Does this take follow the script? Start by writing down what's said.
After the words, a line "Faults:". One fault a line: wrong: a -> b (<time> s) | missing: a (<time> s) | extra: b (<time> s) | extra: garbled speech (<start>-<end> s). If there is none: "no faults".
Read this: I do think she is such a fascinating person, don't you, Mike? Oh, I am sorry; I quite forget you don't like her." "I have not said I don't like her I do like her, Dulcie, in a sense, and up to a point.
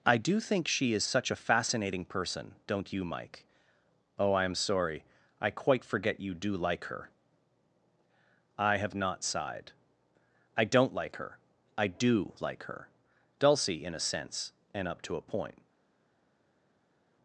I do think she is such a fascinating person, don't you, Mike? Oh, I am sorry; I quite forget you do like her." "I have not sighed I don't like her I do like her, Dulcie, in a sense, and up to a point.
Faults:
wrong: don't -> do (6.3 s)
wrong: said -> sighed (9.2 s)